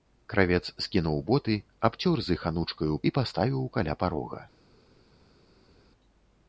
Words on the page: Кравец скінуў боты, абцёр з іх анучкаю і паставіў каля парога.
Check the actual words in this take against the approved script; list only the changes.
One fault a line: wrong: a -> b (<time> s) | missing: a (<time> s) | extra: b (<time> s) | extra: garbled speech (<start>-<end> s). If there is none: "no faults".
no faults